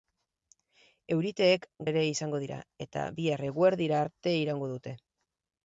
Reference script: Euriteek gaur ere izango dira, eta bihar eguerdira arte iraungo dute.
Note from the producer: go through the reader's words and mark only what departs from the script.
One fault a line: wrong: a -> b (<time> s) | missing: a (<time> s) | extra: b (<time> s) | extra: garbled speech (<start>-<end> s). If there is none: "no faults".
missing: gaur (1.7 s)